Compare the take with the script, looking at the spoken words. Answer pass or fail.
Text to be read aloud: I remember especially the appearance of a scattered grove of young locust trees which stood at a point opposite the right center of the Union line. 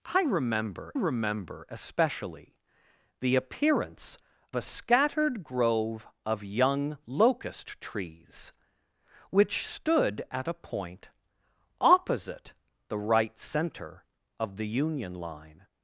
fail